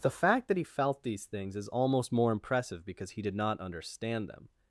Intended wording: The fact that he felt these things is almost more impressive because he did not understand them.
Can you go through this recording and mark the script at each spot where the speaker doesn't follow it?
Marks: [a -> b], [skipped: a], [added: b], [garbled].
The fact that he felt these things is almost more impressive because he did not understand them.